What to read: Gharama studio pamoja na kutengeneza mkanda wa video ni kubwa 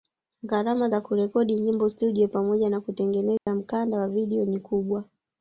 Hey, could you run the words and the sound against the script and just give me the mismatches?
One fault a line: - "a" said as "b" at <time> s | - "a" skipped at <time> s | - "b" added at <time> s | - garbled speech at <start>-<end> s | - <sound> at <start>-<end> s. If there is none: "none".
- "za kurekodi nyimbo" added at 0.9 s
- dropout at 3.4-3.5 s